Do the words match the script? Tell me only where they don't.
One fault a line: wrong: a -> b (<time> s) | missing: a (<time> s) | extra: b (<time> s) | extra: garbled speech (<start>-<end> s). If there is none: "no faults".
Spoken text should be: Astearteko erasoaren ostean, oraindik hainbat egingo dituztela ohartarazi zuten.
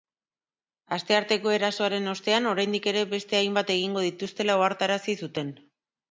extra: ere beste (2.9 s)